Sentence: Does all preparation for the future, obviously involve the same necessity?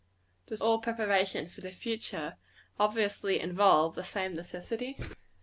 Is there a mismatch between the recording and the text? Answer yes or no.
no